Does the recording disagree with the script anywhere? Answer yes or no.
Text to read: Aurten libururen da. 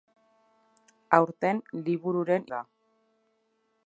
no